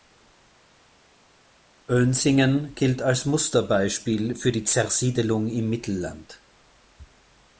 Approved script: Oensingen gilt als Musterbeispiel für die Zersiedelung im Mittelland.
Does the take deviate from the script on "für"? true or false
false